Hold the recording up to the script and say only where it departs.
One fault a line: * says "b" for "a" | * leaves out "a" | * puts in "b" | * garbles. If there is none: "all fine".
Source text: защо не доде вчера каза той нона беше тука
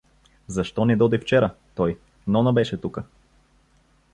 * leaves out "каза"